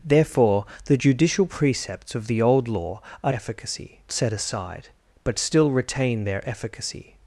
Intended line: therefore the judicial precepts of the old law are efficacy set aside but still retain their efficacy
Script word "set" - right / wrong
right